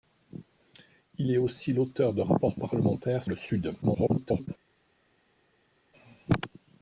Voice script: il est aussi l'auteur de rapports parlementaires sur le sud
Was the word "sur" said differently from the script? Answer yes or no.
yes